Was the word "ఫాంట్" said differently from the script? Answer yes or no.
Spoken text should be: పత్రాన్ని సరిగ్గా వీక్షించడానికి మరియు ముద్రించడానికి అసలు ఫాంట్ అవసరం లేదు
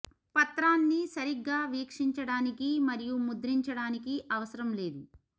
yes